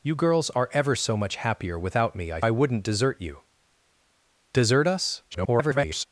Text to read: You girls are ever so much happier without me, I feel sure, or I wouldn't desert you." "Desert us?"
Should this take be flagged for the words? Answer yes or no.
yes